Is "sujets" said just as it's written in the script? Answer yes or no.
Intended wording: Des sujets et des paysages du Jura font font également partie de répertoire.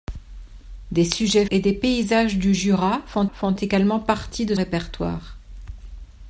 yes